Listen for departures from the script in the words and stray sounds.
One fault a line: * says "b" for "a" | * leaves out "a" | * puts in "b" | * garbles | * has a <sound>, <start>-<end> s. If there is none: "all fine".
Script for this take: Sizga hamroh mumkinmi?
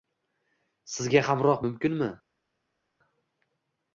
all fine